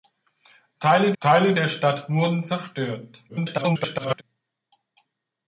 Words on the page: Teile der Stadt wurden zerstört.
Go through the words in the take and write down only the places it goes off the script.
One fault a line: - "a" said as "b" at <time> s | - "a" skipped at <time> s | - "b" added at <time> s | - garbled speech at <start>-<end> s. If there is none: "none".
- "teile" added at 1.2 s
- garbled speech at 3.3-4.2 s